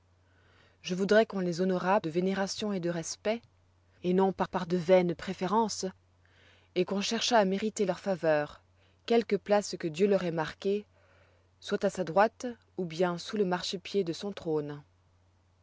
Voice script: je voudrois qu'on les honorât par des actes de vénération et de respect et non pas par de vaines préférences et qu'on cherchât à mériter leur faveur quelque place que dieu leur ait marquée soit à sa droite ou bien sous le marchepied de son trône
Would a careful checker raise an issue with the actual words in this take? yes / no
yes